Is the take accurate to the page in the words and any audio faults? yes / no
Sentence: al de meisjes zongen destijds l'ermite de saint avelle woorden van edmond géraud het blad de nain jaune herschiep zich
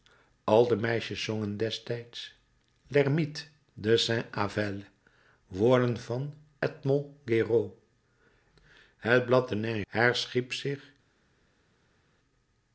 no